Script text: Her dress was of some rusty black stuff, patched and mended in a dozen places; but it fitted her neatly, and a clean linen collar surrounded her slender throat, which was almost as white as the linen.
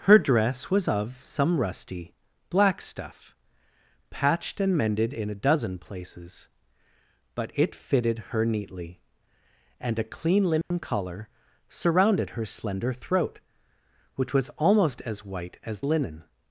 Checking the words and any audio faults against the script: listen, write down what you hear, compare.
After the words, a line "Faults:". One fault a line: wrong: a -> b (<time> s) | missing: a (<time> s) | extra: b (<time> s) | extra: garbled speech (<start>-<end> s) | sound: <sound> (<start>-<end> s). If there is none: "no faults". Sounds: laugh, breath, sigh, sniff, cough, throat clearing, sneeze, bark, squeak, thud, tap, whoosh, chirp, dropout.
Her dress was of some rusty black stuff, patched and mended in a dozen places; but it fitted her neatly, and a clean linen collar surrounded her slender throat, which was almost as white as linen.
Faults:
sound: dropout (10.6-10.7 s)
missing: the (15.8 s)